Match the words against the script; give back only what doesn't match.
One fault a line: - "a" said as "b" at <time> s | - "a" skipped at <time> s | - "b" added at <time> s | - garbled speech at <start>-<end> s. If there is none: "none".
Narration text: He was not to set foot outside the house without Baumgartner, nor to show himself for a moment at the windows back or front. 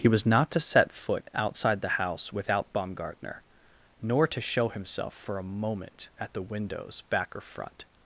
none